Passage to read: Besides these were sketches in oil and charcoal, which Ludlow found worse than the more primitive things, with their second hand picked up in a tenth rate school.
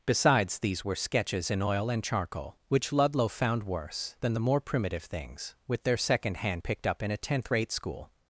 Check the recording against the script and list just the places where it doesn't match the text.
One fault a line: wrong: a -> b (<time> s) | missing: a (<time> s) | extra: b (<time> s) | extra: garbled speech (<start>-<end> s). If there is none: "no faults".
no faults